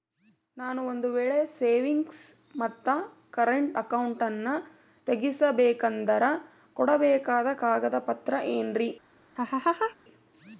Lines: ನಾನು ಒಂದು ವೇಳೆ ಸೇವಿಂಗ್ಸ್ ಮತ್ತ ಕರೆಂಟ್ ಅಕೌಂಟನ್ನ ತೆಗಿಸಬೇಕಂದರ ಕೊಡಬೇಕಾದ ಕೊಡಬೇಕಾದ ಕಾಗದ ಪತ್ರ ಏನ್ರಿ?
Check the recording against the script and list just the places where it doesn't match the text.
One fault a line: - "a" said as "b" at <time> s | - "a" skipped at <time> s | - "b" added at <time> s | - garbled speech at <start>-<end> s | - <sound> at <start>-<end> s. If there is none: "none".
- "ಕೊಡಬೇಕಾದ" skipped at 7.5 s
- laugh at 9.4-10.0 s